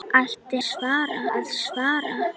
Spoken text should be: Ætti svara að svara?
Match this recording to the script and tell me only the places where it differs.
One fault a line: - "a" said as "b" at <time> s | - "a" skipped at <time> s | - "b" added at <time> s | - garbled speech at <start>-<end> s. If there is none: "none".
none